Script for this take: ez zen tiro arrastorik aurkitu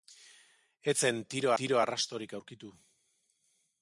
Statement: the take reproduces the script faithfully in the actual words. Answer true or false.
false